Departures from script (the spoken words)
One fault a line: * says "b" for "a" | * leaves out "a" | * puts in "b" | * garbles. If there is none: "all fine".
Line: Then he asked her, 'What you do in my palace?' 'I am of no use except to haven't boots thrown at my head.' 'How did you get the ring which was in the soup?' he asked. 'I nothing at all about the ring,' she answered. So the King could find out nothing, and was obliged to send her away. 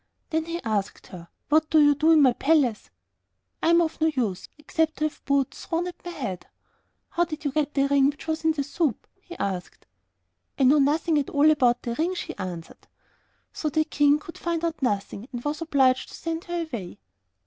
* puts in "do"
* says "have" for "haven't"
* puts in "know"